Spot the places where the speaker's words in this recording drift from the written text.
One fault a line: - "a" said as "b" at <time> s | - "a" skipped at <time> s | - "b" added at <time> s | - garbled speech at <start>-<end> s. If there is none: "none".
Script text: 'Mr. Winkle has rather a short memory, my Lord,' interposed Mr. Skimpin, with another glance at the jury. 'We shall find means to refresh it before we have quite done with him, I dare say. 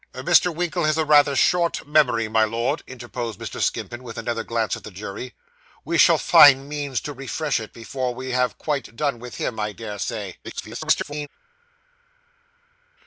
- garbled speech at 10.4-11.3 s